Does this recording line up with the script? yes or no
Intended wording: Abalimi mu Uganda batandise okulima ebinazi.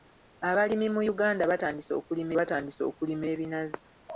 no